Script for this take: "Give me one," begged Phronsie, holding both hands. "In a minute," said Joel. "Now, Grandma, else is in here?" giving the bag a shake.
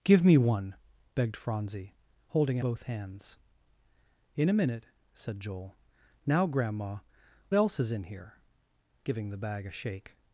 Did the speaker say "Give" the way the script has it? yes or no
yes